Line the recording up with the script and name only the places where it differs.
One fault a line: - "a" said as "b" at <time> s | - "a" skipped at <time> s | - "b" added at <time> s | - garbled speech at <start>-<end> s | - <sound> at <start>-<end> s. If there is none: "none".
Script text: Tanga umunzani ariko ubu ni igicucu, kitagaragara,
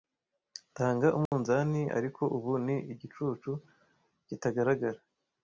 - dropout at 1.3-1.3 s